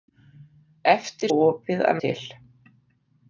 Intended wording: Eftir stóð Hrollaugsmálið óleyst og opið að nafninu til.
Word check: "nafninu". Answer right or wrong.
wrong